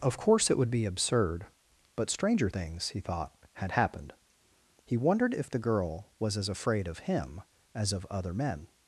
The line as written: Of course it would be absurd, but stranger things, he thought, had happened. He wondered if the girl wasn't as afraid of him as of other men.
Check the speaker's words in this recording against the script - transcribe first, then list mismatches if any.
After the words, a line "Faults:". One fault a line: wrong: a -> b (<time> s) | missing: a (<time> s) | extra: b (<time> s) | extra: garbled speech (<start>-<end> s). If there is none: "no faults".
Of course it would be absurd, but stranger things, he thought, had happened. He wondered if the girl was as afraid of him as of other men.
Faults:
wrong: wasn't -> was (6.2 s)